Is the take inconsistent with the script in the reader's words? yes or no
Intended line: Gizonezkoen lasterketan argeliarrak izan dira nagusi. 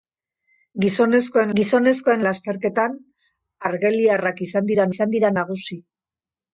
yes